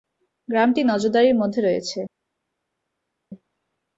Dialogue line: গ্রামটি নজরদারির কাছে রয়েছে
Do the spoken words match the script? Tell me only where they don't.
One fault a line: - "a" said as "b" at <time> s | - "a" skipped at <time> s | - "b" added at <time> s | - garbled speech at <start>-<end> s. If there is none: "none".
- "কাছে" said as "মধ্যে" at 1.4 s